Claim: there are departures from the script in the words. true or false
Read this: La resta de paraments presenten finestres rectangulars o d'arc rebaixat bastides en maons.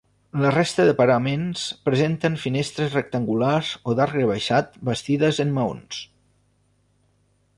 false